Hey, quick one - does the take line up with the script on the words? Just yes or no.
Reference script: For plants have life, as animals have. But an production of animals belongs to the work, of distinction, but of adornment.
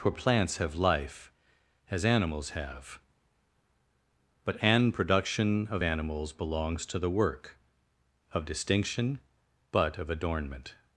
yes